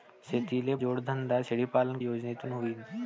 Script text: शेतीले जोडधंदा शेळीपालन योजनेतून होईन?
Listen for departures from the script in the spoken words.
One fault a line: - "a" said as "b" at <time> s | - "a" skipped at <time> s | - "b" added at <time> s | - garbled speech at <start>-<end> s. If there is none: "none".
none